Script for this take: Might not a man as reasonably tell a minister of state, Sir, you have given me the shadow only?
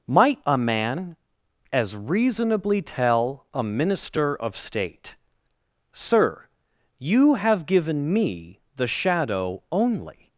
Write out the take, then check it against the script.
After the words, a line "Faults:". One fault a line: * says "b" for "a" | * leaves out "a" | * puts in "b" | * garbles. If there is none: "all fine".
Might a man as reasonably tell a minister of state, Sir, you have given me the shadow only?
Faults:
* leaves out "not"